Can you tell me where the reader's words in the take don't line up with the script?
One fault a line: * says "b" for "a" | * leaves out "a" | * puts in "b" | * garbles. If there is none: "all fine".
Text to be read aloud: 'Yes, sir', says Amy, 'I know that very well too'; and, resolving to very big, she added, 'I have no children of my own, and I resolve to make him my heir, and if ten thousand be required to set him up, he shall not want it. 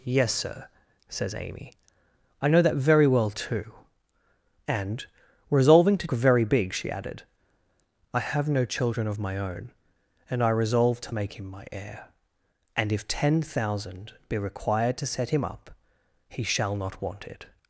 all fine